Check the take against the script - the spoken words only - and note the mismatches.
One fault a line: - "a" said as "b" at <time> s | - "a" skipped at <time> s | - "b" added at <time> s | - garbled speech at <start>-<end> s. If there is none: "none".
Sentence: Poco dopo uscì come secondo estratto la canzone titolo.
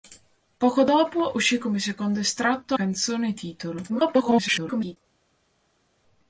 - "la" skipped at 2.8 s
- garbled speech at 3.9-5.0 s